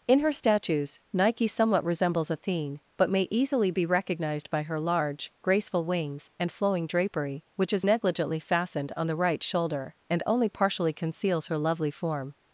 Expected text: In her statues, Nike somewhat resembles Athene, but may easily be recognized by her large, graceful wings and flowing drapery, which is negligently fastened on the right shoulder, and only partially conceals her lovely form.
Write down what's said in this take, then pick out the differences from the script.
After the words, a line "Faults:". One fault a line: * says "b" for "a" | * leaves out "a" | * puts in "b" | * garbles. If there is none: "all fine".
In her statues, Nike somewhat resembles Athene, but may easily be recognized by her large, graceful wings and flowing drapery, which is negligently fastened on the right shoulder, and only partially conceals her lovely form.
Faults:
all fine